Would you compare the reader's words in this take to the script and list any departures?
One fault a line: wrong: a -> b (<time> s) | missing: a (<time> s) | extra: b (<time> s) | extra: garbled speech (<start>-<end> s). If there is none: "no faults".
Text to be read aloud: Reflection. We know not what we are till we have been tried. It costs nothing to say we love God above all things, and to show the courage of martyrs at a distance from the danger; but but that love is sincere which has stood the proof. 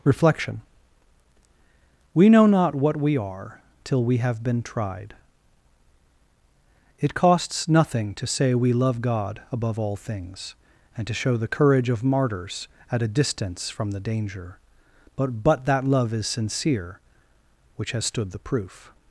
no faults